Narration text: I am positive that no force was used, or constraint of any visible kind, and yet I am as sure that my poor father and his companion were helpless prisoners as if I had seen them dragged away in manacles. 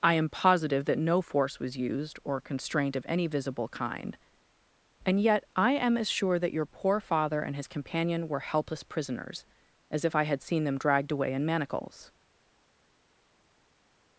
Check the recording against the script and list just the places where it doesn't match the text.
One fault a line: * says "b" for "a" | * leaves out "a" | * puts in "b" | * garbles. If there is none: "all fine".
* says "your" for "my"